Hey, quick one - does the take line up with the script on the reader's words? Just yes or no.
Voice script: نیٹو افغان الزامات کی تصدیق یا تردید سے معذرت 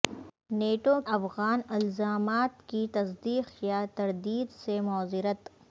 yes